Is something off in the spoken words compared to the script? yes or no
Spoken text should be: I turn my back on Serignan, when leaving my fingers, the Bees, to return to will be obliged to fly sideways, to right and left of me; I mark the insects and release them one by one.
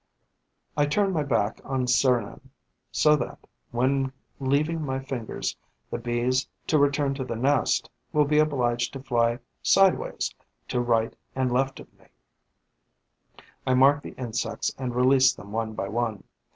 yes